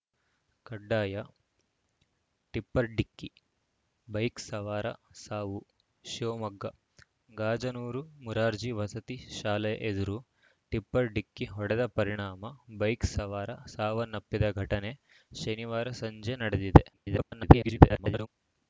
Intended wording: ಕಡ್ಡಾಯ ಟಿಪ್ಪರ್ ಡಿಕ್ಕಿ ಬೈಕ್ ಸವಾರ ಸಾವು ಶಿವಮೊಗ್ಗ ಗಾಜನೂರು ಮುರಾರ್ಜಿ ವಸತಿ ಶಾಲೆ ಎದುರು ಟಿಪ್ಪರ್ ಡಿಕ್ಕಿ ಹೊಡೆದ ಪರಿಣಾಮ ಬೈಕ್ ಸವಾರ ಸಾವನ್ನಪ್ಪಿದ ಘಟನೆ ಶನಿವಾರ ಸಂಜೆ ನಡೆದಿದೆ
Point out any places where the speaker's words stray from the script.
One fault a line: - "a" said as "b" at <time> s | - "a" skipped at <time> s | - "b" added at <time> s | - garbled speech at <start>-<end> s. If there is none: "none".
- garbled speech at 16.9-18.3 s